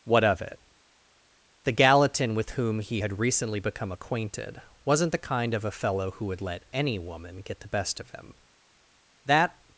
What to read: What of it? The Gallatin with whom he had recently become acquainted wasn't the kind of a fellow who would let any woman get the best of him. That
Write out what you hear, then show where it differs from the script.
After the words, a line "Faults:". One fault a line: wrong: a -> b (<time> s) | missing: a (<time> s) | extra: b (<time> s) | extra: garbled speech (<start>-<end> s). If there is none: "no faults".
What of it? The Gallatin with whom he had recently become acquainted wasn't the kind of a fellow who would let any woman get the best of him. That
Faults:
no faults